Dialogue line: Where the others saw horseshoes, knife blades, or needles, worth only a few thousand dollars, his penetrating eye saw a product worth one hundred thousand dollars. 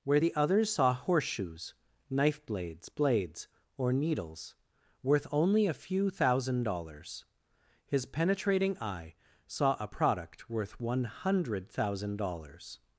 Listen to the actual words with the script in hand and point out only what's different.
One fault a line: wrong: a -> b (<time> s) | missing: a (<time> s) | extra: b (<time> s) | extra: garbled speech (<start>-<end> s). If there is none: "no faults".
extra: blades (2.9 s)